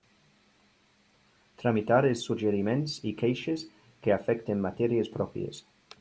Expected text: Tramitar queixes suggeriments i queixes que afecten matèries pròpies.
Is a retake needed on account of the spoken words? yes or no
yes